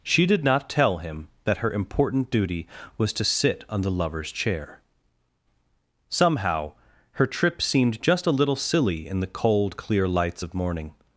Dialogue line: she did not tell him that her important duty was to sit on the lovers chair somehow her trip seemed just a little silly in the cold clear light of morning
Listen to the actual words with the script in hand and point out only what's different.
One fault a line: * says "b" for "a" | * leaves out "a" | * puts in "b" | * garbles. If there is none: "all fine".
* says "lights" for "light"